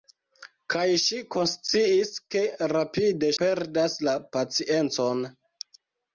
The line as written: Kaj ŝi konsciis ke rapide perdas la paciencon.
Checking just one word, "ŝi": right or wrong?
right